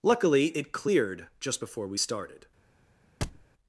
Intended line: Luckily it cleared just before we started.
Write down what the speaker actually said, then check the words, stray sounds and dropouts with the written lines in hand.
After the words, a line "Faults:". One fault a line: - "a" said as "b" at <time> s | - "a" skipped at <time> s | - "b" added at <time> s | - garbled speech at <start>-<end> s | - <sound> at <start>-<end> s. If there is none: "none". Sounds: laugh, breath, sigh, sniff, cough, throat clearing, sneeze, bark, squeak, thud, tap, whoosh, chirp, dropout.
Luckily it cleared just before we started.
Faults:
- thud at 3.2-3.5 s